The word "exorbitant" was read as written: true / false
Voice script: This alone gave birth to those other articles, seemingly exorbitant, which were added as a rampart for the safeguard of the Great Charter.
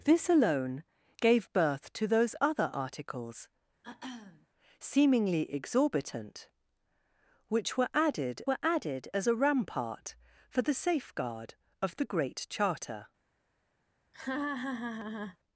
true